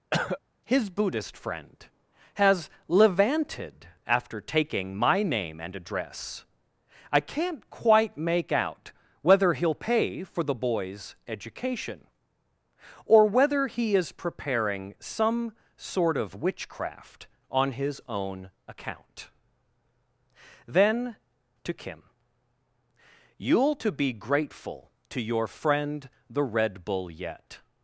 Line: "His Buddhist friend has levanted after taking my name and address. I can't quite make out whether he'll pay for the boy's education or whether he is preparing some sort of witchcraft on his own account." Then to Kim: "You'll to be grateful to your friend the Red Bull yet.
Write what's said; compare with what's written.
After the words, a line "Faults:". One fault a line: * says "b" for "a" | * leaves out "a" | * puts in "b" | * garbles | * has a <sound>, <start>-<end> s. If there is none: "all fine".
"His Buddhist friend has levanted after taking my name and address. I can't quite make out whether he'll pay for the boy's education or whether he is preparing some sort of witchcraft on his own account." Then to Kim: "You'll to be grateful to your friend the Red Bull yet.
Faults:
* has a cough, 0.1-0.4 s